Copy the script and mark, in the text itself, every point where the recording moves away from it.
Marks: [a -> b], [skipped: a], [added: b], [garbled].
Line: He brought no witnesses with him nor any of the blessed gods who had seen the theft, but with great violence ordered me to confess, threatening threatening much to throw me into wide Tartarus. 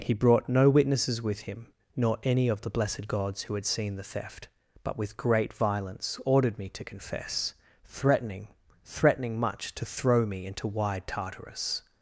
He brought no witnesses with him nor any of the blessed gods who had seen the theft, but with great violence ordered me to confess, threatening threatening much to throw me into wide Tartarus.